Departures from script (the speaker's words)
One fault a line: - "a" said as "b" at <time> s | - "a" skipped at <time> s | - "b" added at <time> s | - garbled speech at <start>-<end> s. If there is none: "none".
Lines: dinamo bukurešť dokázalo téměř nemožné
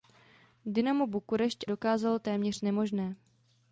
none